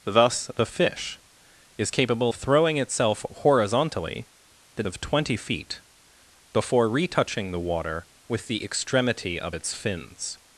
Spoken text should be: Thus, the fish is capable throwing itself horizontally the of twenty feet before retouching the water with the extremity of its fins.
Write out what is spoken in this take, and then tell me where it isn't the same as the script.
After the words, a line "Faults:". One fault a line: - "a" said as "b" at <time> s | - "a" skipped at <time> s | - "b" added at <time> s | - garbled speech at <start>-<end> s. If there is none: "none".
Thus, the fish is capable throwing itself horizontally the of twenty feet before retouching the water with the extremity of its fins.
Faults:
none